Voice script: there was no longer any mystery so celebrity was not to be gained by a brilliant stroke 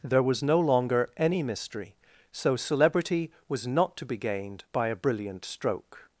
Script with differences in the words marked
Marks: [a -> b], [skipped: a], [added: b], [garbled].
there was no longer any mystery so celebrity was not to be gained by a brilliant stroke